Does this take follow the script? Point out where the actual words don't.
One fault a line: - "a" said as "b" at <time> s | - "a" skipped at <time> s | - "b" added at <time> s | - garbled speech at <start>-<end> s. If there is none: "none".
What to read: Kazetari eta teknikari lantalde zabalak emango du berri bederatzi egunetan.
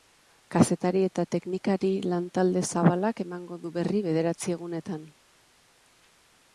none